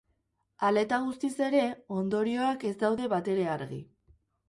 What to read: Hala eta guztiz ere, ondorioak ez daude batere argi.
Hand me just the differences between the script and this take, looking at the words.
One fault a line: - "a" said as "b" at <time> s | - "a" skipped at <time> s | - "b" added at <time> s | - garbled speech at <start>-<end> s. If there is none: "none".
none